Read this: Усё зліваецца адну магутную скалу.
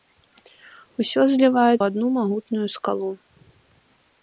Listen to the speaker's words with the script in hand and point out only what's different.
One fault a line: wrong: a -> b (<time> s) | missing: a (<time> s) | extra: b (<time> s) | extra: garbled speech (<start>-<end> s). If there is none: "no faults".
no faults